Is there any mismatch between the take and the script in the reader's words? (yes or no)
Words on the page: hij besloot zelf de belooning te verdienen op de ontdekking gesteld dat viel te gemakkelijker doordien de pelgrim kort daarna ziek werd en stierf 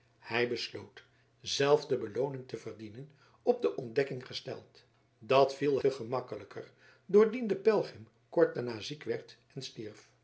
no